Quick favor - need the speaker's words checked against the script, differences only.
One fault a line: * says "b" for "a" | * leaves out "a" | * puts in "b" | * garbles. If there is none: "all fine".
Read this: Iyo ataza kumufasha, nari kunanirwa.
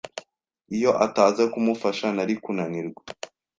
all fine